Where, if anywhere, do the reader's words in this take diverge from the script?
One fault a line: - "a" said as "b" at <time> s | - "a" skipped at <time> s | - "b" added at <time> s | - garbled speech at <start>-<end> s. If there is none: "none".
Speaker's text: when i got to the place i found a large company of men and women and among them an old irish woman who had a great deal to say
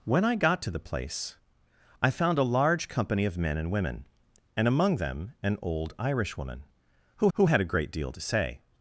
- "who" added at 7.3 s